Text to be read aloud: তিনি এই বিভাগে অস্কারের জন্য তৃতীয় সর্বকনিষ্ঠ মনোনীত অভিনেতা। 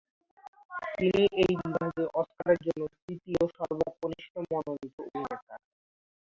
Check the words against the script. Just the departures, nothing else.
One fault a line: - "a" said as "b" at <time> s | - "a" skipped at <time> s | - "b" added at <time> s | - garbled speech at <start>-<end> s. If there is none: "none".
none